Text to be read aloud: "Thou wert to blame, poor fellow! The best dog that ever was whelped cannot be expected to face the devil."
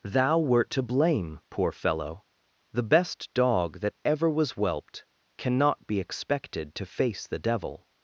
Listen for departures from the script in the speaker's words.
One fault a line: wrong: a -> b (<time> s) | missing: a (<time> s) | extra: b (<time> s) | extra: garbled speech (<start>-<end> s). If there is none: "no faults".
no faults